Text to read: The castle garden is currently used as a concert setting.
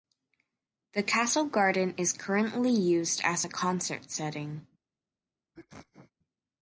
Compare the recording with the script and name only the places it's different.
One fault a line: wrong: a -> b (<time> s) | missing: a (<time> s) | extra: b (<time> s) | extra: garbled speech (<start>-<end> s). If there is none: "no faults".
no faults